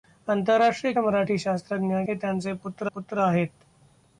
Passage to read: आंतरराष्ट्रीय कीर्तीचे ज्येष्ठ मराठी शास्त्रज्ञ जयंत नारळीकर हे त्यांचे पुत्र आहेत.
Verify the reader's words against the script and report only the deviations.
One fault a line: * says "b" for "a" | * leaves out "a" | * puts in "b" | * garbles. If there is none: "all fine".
* leaves out "कीर्तीचे ज्येष्ठ"
* leaves out "जयंत नारळीकर"
* puts in "पुत्र"